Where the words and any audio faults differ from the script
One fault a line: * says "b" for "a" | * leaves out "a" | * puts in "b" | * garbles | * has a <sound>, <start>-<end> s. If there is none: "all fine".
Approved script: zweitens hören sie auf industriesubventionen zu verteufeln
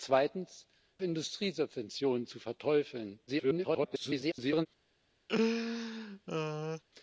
* leaves out "hören sie auf"
* garbles
* has a laugh, 5.3-6.8 s